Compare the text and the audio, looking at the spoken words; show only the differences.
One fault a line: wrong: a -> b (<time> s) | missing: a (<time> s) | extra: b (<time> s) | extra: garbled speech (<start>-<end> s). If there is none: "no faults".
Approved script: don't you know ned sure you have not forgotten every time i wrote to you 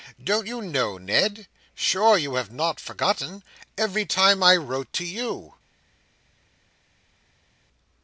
no faults